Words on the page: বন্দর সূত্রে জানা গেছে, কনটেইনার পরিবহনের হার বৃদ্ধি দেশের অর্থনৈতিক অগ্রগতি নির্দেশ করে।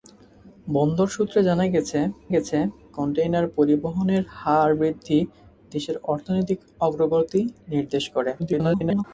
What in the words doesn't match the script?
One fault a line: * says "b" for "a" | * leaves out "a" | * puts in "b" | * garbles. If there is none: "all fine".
* puts in "গেছে"
* garbles